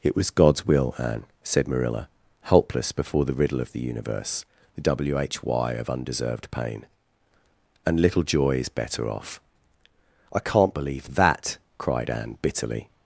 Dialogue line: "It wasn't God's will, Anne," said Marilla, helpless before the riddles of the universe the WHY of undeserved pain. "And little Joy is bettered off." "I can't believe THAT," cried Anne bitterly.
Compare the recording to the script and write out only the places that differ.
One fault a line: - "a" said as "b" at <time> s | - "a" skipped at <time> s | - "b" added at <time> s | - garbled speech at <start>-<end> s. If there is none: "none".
- "wasn't" said as "was" at 0.1 s
- "riddles" said as "riddle" at 3.4 s
- "bettered" said as "better" at 8.7 s